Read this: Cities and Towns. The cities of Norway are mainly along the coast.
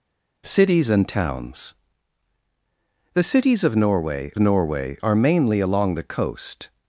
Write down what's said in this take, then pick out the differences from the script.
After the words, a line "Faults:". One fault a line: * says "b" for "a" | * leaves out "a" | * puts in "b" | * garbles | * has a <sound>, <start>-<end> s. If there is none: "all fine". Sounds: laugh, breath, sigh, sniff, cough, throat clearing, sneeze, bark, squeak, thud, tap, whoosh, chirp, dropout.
Cities and Towns. The cities of Norway Norway are mainly along the coast.
Faults:
* puts in "Norway"